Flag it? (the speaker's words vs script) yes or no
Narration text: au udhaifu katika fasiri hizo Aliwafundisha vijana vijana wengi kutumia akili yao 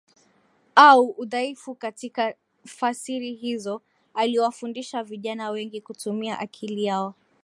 yes